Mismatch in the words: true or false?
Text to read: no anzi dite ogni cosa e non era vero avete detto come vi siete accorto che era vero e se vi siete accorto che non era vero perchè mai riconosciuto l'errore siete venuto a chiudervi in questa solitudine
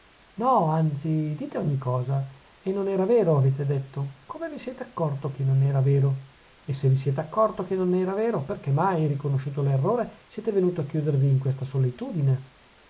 true